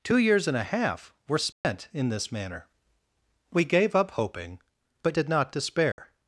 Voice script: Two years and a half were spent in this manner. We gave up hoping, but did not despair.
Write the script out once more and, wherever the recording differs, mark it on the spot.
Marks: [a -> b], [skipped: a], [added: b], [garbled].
Two years and a half were spent in this manner. We gave up hoping, but did not despair.